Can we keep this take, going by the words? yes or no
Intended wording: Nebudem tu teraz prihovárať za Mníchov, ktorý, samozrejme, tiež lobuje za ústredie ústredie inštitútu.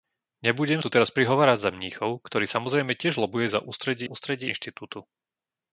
yes